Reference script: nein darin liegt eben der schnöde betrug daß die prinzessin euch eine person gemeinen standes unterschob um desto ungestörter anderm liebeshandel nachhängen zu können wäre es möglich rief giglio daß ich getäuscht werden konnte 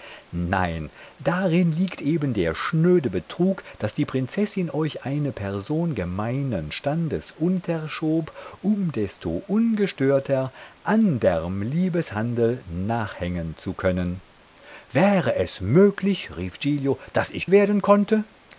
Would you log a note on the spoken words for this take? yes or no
yes